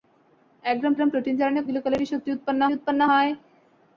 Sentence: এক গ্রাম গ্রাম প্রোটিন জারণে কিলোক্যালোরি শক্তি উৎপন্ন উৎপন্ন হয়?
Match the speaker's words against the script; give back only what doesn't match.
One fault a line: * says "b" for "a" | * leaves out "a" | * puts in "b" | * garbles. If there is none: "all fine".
all fine